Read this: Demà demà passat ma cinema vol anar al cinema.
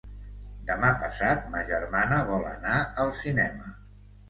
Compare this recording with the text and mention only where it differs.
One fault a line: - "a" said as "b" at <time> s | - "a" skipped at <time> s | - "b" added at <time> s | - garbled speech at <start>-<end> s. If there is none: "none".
- "demà" skipped at 0.9 s
- "cinema" said as "germana" at 1.7 s